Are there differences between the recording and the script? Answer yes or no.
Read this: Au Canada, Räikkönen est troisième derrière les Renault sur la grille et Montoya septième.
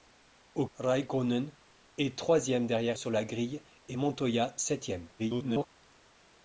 yes